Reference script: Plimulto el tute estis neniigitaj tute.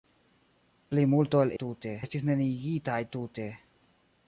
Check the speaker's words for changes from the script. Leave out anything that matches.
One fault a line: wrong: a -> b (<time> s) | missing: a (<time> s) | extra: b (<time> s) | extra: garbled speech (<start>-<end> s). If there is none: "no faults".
no faults